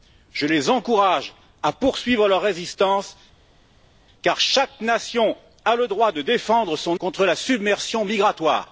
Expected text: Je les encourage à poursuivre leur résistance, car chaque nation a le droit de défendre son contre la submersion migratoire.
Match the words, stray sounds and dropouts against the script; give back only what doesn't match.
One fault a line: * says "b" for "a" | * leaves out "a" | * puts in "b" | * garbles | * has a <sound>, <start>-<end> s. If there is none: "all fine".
all fine